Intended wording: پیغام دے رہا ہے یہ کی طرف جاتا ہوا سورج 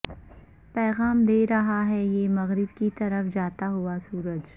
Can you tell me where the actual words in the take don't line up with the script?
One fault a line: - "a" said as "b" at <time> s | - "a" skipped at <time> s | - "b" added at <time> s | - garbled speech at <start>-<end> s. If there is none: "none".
- "مغرب" added at 2.3 s